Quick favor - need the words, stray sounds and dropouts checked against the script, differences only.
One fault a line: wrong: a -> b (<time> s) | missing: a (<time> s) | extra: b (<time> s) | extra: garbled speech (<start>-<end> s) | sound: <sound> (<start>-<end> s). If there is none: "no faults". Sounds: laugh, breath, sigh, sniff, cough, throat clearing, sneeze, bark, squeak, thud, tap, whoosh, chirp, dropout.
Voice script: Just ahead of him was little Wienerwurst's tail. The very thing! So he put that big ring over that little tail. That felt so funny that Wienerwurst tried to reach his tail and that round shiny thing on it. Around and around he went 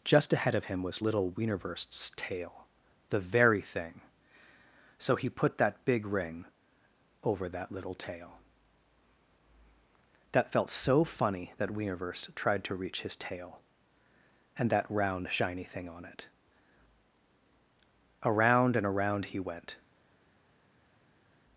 no faults